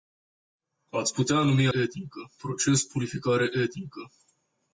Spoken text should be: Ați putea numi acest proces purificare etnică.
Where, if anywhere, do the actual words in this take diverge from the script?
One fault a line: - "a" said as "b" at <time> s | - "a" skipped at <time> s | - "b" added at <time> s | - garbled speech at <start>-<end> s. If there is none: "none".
- "acest" said as "etnică" at 1.7 s